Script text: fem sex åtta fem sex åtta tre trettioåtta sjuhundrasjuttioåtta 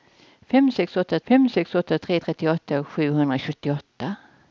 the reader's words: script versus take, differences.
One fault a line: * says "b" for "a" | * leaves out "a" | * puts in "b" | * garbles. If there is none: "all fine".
all fine